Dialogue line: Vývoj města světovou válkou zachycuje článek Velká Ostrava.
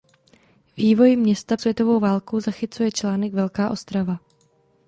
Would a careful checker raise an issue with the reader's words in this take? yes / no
no